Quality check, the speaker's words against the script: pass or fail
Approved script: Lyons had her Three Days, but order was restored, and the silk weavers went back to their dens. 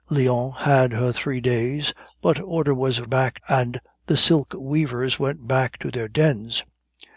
fail